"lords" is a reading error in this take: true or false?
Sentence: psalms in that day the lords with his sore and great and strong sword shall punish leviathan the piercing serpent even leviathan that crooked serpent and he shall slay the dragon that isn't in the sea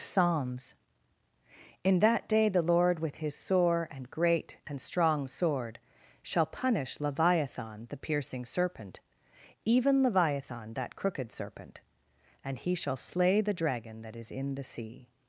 true